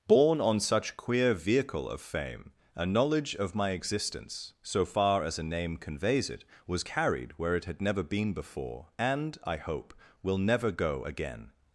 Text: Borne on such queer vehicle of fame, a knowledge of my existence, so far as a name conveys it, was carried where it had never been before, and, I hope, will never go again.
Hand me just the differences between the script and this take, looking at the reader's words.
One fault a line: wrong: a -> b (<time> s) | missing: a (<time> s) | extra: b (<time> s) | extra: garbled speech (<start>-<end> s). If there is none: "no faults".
no faults